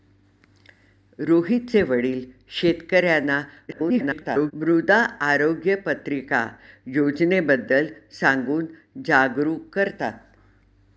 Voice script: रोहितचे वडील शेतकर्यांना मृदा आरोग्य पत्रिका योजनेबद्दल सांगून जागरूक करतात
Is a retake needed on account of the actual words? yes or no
yes